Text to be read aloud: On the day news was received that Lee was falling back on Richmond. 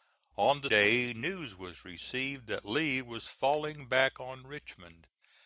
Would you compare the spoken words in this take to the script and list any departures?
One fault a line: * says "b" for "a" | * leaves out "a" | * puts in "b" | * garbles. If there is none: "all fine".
all fine